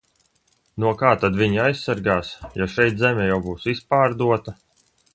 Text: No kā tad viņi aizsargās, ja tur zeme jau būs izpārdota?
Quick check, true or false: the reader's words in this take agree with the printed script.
false